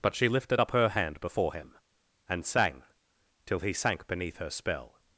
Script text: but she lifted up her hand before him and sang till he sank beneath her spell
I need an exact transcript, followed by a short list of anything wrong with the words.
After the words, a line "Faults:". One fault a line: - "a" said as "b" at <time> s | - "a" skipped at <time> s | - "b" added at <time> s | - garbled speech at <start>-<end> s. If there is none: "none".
but she lifted up her hand before him and sang till he sank beneath her spell
Faults:
none